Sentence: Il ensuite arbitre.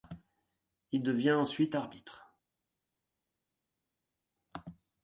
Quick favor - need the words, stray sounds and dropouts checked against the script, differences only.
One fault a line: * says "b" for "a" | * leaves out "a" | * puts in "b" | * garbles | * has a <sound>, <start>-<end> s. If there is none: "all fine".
* puts in "devient"